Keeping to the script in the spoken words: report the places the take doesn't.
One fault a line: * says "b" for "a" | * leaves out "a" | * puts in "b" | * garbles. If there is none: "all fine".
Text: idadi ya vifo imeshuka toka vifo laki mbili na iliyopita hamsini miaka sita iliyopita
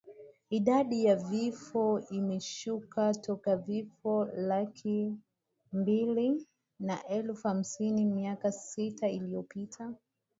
* says "elfu" for "iliyopita"